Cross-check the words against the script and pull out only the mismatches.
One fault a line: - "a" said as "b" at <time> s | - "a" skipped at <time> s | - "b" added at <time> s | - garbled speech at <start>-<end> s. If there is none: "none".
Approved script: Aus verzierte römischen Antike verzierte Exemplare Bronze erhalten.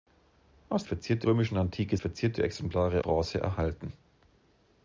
none